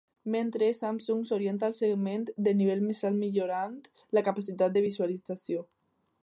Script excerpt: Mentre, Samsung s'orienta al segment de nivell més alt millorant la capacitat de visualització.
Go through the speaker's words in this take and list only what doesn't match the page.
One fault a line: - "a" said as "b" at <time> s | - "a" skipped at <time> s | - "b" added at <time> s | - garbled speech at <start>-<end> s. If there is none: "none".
none